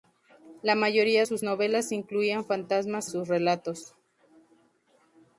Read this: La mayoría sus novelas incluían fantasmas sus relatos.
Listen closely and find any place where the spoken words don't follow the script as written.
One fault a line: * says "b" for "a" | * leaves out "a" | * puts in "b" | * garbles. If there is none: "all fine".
all fine